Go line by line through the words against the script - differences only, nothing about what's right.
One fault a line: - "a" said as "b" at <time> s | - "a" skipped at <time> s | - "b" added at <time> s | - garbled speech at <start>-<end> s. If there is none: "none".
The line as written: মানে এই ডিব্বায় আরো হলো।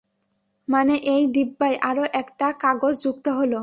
- "একটা কাগজ যুক্ত" added at 2.1 s